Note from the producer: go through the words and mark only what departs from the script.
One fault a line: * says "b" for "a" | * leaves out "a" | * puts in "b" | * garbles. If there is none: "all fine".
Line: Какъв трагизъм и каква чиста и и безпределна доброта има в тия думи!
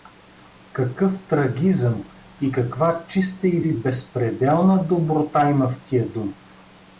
all fine